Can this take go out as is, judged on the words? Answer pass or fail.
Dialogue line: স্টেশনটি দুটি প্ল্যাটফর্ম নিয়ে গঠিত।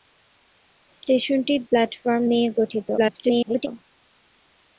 fail